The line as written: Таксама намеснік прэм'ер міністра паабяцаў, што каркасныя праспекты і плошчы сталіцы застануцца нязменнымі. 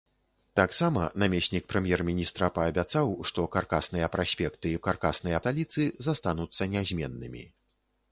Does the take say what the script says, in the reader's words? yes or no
no